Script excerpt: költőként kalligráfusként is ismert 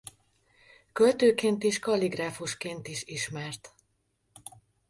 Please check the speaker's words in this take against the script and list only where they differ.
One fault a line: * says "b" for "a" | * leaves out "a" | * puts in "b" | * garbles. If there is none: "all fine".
* puts in "és"